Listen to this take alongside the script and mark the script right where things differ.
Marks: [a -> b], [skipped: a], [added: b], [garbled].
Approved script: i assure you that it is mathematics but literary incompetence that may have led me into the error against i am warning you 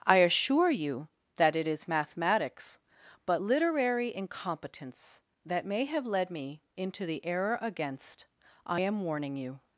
i assure you that it is mathematics but literary incompetence that may have led me into the error against i am warning you